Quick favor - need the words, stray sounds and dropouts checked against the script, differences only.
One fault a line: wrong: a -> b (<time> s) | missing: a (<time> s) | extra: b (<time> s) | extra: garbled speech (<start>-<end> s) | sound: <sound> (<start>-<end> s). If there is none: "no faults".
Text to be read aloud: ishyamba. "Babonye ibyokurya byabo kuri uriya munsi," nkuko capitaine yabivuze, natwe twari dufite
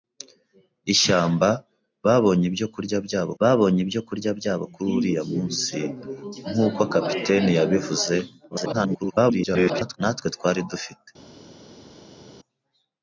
extra: babonye ibyokurya byabo (3.4 s)
extra: garbled speech (8.5-10.0 s)